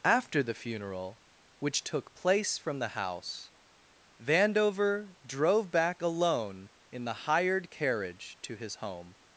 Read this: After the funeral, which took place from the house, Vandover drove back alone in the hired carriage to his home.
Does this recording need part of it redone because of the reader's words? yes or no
no